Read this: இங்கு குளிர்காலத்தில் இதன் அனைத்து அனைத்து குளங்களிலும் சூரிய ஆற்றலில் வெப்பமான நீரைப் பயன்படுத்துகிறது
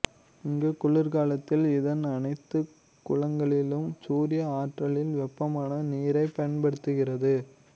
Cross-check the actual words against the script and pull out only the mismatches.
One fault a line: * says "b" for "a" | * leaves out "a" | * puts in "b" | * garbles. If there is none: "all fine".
* leaves out "அனைத்து"